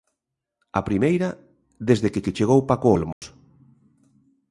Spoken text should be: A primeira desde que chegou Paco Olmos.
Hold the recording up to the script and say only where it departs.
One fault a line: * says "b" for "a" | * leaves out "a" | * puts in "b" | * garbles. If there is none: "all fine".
* puts in "que"